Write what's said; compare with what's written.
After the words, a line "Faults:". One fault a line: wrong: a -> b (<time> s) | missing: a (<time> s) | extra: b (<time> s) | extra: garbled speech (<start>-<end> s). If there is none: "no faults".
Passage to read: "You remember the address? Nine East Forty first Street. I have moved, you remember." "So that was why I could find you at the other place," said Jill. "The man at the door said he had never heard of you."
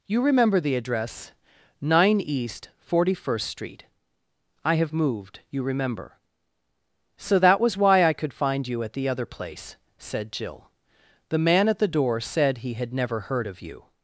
"You remember the address? Nine East Forty first Street. I have moved, you remember." "So that was why I could find you at the other place," said Jill. "The man at the door said he had never heard of you."
Faults:
no faults